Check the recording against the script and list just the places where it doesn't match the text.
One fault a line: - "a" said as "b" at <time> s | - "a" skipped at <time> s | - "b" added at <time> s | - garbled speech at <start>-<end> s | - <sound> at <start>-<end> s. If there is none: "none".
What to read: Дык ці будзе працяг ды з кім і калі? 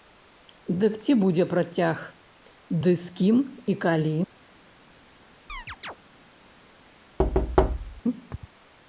- chirp at 5.5-6.0 s
- thud at 7.2-8.0 s